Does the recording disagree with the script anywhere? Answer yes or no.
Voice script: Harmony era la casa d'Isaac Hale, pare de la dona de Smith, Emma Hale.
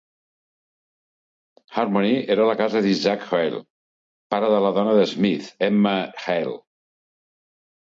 no